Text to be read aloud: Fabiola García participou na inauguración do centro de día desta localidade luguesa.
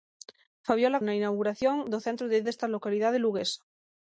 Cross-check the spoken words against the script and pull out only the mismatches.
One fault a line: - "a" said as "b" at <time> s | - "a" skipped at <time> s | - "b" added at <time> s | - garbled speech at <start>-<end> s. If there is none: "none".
- "García participou" skipped at 1.0 s
- "día" skipped at 2.4 s